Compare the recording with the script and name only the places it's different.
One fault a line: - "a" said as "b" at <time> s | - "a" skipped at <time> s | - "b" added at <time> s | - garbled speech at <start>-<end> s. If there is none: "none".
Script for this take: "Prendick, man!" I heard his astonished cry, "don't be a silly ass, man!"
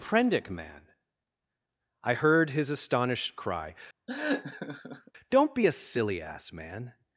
none